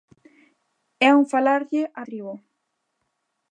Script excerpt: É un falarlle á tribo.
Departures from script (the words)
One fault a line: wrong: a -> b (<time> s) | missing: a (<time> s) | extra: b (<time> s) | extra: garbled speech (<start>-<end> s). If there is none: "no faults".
no faults